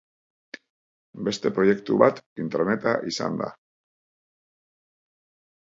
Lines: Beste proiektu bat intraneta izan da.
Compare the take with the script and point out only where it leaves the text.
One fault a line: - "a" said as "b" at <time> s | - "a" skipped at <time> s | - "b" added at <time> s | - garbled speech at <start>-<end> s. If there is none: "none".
none